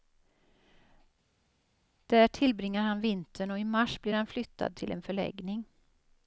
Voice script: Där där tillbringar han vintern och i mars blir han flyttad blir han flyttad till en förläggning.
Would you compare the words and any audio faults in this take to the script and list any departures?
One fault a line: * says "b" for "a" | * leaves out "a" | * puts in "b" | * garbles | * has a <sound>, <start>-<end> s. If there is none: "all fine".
* leaves out "där"
* leaves out "blir han flyttad"